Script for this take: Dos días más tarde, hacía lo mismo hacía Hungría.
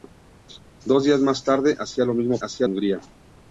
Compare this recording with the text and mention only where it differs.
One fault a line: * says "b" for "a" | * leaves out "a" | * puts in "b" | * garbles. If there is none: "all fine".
all fine